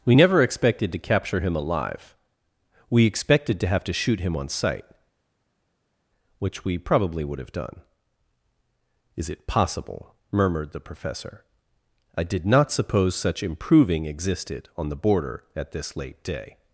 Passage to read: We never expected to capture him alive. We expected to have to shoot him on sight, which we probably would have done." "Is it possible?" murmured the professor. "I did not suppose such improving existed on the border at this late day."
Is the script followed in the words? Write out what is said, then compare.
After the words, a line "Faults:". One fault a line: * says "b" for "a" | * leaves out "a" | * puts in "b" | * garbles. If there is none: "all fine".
We never expected to capture him alive. We expected to have to shoot him on sight, which we probably would have done." "Is it possible?" murmured the professor. "I did not suppose such improving existed on the border at this late day."
Faults:
all fine